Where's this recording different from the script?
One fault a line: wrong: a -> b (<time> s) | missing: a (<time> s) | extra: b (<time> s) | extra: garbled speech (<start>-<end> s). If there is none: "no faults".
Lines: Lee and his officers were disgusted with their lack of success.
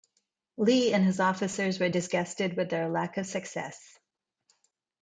no faults